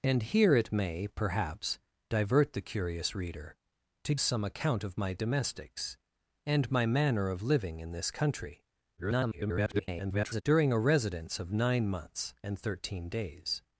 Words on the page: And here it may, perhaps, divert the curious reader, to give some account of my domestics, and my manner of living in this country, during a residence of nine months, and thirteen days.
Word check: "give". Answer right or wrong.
wrong